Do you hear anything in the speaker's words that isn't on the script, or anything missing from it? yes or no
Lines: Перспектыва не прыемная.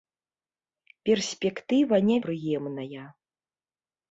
no